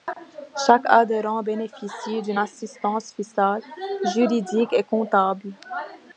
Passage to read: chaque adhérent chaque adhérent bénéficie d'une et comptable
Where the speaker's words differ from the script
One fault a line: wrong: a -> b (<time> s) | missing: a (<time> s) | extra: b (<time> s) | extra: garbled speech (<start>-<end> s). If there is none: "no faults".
wrong: chaque adhérent bénéficie d'une -> bénéficie d'une assistance fiscale juridique (1.4 s)